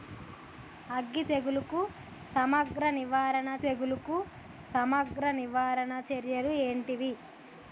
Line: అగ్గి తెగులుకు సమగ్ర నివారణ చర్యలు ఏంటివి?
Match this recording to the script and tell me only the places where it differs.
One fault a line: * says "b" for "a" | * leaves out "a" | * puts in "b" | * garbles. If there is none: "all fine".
* puts in "తెగులుకు సమగ్ర నివారణ"